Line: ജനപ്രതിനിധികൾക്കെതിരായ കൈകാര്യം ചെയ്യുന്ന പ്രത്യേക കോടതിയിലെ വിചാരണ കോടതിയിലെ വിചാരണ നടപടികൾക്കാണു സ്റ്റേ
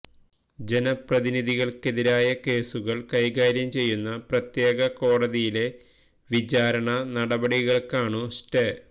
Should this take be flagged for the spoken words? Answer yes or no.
yes